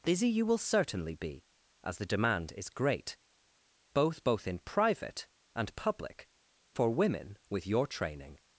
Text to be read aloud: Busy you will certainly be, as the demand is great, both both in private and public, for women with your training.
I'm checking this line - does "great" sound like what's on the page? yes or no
yes